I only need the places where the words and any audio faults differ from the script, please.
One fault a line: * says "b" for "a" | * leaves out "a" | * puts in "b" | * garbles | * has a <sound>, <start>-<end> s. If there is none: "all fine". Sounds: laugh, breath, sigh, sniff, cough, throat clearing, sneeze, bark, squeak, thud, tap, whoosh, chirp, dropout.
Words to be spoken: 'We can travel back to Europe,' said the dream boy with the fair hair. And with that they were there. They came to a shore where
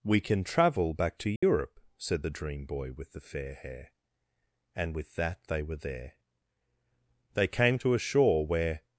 * has a dropout, 1.4-1.4 s